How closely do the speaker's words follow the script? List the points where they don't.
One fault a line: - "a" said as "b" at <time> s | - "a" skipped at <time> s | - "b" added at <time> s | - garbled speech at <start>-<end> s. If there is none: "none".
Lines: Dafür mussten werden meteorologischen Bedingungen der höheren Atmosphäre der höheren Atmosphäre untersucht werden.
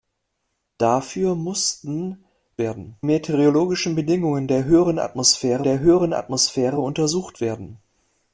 none